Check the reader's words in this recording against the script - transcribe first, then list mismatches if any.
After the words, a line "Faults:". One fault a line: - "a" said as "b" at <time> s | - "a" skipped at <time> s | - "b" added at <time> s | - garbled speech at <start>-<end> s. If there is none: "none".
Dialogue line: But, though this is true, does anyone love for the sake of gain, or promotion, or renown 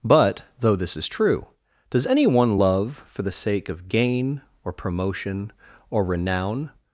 But, though this is true, does anyone love for the sake of gain, or promotion, or renown
Faults:
none